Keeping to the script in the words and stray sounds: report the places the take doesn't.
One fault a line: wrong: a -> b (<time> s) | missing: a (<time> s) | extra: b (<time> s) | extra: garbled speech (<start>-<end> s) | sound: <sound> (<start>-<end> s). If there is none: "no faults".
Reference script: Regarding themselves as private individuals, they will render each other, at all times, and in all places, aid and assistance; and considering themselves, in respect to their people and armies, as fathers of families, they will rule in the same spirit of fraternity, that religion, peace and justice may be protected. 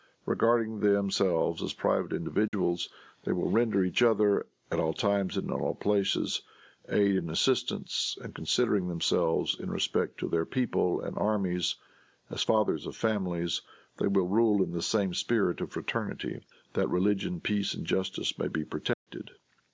sound: dropout (2.5-2.5 s)
sound: dropout (18.9-19.1 s)